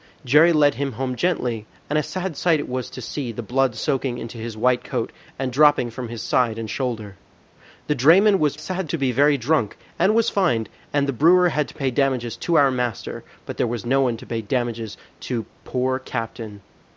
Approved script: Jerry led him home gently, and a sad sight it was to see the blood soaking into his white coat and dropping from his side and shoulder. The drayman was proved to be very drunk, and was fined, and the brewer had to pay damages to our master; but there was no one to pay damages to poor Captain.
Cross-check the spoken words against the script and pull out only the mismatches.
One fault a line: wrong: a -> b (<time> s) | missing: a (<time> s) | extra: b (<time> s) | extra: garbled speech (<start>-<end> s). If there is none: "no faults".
wrong: proved -> sad (8.5 s)